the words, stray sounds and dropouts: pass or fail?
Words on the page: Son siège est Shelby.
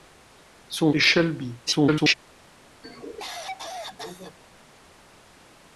fail